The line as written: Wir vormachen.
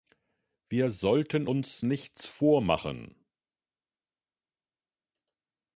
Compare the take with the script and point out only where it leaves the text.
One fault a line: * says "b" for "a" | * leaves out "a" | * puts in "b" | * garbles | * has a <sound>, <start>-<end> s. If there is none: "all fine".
* puts in "sollten uns nichts"